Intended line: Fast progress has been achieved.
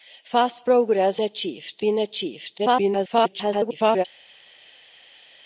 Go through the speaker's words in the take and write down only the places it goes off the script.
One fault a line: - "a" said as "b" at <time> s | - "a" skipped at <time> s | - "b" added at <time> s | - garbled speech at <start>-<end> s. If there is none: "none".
- "has" said as "achieved" at 1.2 s
- garbled speech at 2.6-4.0 s